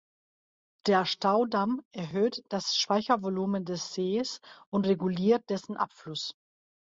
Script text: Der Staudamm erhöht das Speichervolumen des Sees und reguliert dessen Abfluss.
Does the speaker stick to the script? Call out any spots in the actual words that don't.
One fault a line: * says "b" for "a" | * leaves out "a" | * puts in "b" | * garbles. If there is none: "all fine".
all fine